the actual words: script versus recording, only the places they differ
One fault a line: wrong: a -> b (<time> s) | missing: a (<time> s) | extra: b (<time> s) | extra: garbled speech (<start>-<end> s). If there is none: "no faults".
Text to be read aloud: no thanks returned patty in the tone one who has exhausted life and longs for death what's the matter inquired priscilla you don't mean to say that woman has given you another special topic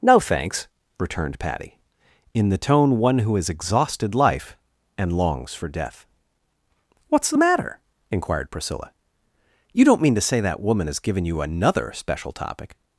no faults